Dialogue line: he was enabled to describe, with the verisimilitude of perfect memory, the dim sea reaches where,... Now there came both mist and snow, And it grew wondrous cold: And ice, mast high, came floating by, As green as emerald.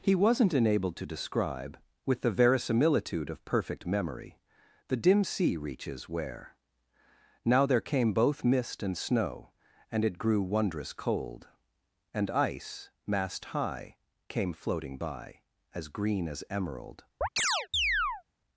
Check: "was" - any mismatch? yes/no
yes